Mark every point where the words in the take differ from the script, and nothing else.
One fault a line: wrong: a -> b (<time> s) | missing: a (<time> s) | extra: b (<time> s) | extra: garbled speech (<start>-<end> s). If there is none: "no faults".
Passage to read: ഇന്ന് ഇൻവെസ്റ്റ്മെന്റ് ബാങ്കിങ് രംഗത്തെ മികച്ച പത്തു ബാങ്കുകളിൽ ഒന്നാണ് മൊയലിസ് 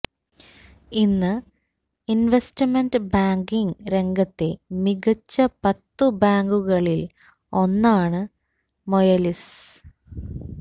no faults